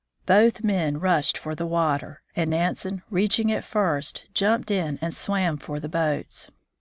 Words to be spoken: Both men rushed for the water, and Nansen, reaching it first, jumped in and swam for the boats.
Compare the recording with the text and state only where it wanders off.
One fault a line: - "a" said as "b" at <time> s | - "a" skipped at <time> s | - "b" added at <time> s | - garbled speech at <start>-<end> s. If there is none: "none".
none